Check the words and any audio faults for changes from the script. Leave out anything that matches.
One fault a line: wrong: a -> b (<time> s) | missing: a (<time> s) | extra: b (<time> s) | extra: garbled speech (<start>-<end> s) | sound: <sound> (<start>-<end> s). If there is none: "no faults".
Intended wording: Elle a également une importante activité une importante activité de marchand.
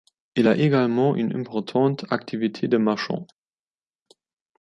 wrong: Elle -> Il (0.3 s)
missing: une importante activité (2.7 s)